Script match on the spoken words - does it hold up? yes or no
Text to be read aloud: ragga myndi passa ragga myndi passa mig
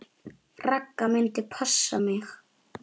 no